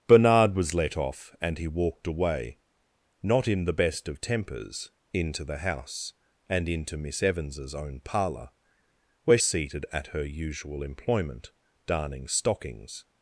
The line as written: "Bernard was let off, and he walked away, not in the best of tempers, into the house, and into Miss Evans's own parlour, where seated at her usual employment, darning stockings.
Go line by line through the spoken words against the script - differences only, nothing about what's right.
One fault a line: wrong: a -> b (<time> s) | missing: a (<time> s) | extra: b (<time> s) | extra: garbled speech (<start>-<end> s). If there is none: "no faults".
no faults